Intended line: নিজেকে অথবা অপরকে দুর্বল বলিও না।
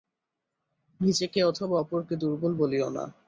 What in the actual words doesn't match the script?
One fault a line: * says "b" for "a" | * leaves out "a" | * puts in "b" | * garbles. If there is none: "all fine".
all fine